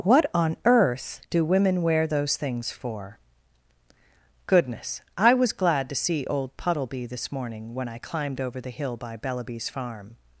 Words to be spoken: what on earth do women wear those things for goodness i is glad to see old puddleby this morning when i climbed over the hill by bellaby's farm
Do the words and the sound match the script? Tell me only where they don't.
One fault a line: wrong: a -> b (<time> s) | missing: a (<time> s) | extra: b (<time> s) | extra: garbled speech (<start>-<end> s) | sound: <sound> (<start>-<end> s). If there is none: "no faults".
wrong: is -> was (5.3 s)